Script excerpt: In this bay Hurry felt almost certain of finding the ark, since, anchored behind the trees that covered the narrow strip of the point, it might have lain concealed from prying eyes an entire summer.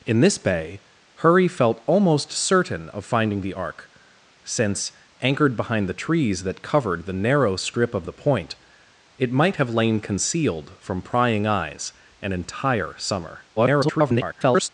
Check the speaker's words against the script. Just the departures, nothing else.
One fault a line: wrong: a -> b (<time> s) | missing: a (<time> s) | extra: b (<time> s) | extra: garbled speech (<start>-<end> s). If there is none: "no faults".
extra: garbled speech (13.6-14.7 s)